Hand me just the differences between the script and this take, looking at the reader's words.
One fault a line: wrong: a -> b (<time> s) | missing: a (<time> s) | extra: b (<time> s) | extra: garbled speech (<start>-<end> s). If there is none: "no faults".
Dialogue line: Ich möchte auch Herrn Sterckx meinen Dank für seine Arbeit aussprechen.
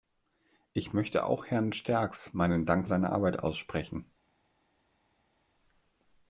missing: für (2.9 s)